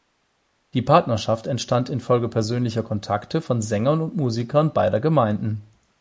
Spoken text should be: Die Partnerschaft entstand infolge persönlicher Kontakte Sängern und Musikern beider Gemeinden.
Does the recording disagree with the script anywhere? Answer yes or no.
yes